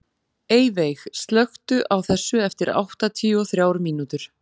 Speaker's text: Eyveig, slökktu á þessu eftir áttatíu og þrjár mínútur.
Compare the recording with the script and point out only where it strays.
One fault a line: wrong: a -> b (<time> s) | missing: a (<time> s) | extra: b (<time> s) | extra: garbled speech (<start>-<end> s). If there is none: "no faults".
no faults